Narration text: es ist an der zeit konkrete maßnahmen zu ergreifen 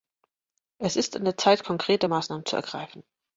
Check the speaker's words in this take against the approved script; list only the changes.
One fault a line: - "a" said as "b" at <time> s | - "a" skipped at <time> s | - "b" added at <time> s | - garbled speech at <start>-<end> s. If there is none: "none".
none